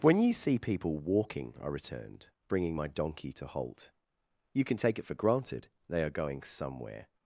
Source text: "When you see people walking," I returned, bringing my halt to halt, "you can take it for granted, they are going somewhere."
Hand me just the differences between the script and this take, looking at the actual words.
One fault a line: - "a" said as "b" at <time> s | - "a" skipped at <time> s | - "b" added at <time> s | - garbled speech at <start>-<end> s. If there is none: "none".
- "halt" said as "donkey" at 2.9 s